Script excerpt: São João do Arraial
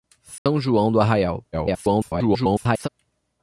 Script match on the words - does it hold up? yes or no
no